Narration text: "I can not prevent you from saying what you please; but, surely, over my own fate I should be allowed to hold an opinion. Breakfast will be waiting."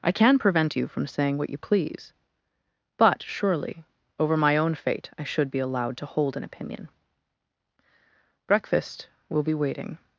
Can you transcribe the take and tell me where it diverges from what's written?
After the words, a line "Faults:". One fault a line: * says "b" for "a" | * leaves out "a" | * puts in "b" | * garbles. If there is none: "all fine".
"I can prevent you from saying what you please; but, surely, over my own fate I should be allowed to hold an opinion. Breakfast will be waiting."
Faults:
* leaves out "not"